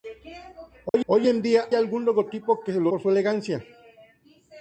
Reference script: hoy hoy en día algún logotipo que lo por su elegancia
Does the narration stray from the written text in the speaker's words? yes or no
no